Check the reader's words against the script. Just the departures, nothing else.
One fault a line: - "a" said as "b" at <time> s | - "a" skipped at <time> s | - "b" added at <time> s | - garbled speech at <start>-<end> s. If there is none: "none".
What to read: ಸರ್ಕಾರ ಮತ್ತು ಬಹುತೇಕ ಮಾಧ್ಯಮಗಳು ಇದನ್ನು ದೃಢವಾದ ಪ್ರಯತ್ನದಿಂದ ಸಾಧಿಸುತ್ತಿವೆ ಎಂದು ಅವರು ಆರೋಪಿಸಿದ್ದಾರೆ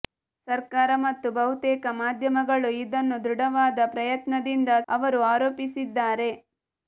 - "ಸಾಧಿಸುತ್ತಿವೆ ಎಂದು" skipped at 4.7 s